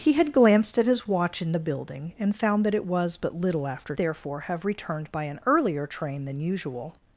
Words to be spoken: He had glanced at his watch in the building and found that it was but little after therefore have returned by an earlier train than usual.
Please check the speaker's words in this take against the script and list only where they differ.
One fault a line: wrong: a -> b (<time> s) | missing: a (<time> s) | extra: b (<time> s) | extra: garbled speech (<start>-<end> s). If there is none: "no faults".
no faults